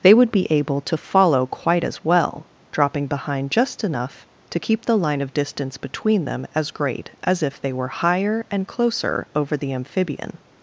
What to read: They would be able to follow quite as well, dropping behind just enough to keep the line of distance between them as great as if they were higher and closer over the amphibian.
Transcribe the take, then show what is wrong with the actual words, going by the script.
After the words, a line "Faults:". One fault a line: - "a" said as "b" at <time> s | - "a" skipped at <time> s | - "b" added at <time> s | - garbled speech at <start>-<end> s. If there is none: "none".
They would be able to follow quite as well, dropping behind just enough to keep the line of distance between them as great as if they were higher and closer over the amphibian.
Faults:
none